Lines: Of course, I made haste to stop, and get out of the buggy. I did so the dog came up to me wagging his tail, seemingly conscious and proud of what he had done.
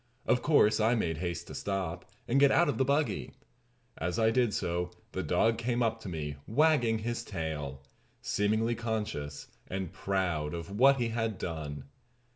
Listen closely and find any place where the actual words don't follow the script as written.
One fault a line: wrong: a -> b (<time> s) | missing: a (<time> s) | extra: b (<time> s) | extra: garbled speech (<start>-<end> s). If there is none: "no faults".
extra: As (4.0 s)